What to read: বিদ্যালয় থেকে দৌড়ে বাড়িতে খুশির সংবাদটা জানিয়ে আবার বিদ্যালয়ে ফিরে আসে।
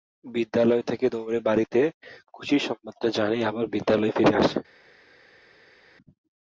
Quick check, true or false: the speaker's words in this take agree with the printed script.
true